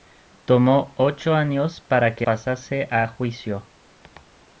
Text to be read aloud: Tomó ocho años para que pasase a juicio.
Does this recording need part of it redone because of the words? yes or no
no